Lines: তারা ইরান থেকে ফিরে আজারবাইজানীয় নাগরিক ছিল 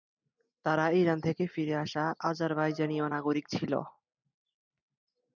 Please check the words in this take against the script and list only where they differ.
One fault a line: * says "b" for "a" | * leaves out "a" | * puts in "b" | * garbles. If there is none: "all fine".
* puts in "আসা"